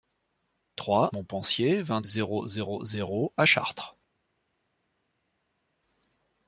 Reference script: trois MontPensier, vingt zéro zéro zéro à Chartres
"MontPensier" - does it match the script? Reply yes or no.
yes